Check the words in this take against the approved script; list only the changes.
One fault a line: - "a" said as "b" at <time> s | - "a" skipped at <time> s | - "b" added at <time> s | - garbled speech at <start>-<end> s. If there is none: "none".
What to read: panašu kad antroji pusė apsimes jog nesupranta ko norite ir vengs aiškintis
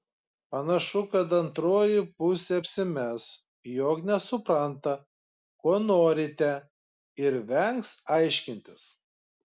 none